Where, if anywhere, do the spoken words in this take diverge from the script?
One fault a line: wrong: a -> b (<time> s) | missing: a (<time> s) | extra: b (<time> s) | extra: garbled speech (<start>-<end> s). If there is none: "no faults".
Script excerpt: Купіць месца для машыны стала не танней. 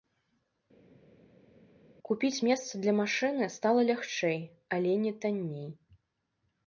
extra: лягчэй але (3.9 s)